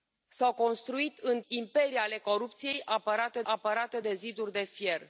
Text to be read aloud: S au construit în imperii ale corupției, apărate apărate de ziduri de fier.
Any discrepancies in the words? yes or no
no